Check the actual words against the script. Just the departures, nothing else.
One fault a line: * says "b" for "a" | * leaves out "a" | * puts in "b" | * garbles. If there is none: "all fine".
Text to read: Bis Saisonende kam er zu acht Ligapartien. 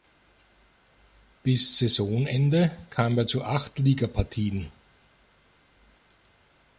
all fine